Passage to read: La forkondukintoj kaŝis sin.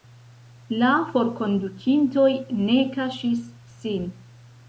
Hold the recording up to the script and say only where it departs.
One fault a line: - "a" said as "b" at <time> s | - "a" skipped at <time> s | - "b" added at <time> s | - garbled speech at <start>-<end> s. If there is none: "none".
- "ne" added at 2.6 s